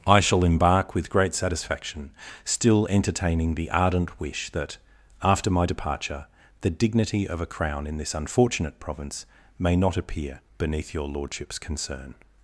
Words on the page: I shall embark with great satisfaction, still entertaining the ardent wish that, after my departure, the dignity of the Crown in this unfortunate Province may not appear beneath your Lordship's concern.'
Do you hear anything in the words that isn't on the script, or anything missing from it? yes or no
yes